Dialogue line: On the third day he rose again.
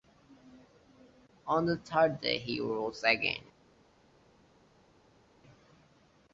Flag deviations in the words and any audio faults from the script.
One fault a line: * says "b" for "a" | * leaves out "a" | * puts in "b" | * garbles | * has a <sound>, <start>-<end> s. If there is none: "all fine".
all fine